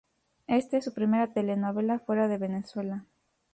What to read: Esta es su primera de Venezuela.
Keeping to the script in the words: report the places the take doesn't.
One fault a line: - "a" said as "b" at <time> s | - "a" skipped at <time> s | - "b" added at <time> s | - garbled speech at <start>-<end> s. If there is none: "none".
- "telenovela fuera" added at 1.3 s